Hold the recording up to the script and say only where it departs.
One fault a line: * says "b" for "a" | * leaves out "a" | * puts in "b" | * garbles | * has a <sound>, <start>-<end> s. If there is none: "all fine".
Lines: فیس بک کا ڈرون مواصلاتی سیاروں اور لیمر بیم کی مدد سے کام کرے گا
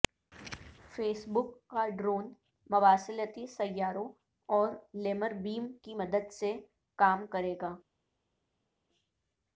all fine